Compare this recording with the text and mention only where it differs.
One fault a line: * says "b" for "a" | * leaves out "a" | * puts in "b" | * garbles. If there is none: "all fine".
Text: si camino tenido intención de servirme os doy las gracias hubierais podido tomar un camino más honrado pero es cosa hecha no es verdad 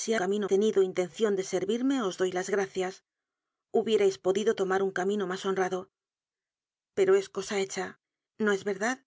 all fine